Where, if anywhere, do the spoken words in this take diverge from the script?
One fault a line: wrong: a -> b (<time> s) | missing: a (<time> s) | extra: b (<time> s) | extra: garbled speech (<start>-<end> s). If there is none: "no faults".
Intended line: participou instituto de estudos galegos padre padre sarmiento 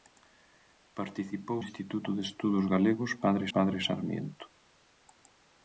no faults